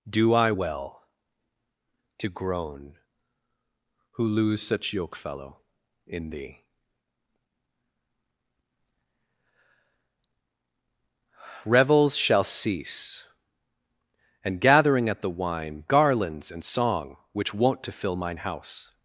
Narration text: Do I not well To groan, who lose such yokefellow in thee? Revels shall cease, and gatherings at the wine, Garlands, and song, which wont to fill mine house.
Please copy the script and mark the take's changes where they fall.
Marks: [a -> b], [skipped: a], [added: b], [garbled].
Do I [skipped: not] well To groan, who lose such yokefellow in thee? Revels shall cease, and [gatherings -> gathering] at the wine, Garlands, and song, which wont to fill mine house.